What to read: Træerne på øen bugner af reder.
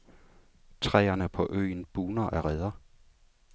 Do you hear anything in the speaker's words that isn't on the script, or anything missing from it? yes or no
no